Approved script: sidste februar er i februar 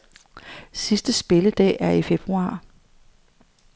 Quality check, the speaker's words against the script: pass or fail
fail